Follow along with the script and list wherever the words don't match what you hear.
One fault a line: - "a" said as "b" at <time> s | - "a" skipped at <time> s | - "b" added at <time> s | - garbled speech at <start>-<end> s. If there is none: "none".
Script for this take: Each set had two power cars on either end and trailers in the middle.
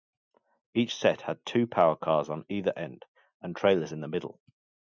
none